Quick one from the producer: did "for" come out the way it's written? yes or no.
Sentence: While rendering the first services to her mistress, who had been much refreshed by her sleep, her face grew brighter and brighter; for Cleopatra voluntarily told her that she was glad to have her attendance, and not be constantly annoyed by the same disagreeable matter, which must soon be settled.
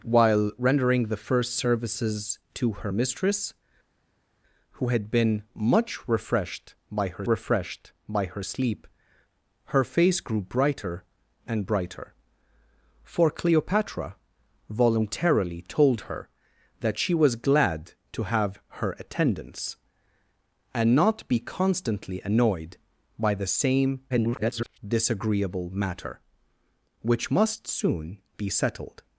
yes